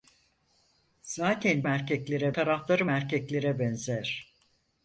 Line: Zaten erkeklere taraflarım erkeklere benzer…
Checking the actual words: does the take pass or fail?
pass